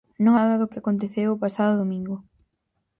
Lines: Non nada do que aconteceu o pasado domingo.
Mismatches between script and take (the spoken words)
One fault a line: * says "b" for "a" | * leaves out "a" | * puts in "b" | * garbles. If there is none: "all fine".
all fine